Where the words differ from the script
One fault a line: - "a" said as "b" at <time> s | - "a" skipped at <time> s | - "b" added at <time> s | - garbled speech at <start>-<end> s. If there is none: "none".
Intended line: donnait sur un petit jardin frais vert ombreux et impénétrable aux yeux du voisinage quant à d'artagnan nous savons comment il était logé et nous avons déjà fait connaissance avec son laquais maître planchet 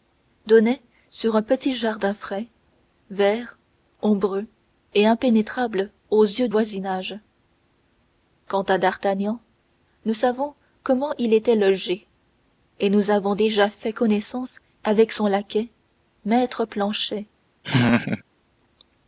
- "du" skipped at 6.5 s